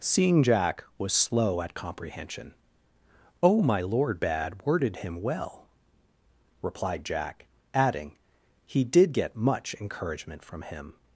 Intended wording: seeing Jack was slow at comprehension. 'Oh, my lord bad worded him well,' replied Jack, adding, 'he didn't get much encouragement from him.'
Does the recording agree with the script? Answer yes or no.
no